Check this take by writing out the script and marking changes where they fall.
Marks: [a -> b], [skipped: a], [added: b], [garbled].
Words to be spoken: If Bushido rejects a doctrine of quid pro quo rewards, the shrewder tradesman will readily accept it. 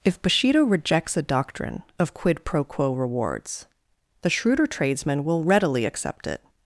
If Bushido rejects a doctrine of quid pro quo rewards, the shrewder tradesman will readily accept it.